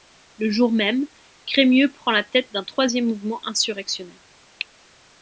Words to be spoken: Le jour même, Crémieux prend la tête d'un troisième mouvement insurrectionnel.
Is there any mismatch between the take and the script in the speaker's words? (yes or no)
no